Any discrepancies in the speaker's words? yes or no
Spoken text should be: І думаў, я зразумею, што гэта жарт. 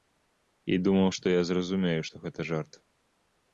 yes